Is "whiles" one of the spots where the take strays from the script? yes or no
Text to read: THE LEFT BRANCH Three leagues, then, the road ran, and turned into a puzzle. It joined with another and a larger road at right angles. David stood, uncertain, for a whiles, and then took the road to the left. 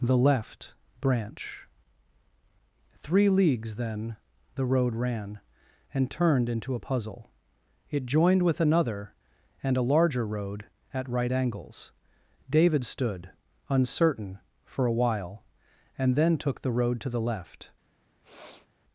yes